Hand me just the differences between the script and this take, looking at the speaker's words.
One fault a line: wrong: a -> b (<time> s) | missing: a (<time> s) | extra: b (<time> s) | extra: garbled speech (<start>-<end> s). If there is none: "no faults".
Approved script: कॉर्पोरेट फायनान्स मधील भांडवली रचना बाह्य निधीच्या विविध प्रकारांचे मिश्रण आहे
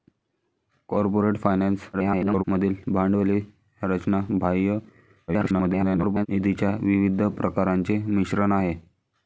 extra: garbled speech (1.9-2.4 s)
extra: garbled speech (5.3-6.3 s)